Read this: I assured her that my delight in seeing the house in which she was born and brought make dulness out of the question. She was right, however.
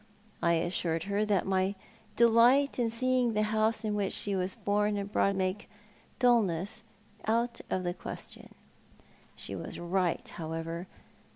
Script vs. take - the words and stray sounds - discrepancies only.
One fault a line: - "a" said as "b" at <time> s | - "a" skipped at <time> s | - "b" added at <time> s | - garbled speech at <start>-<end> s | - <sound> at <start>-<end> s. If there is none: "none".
none